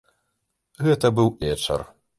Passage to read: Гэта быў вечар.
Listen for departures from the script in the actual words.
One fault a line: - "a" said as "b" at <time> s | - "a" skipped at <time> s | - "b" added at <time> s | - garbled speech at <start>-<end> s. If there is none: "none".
none